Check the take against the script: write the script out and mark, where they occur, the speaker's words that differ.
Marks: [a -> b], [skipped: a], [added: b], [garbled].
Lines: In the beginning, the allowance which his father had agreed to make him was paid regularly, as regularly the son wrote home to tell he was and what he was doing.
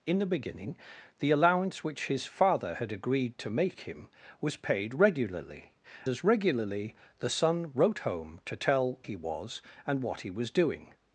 In the beginning, the allowance which his father had agreed to make him was paid regularly, as regularly the son wrote home to tell he was and what he was doing.